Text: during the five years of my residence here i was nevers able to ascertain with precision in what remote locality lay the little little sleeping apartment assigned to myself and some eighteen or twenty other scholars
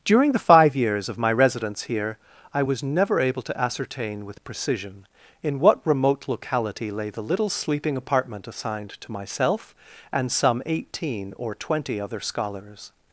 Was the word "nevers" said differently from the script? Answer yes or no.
yes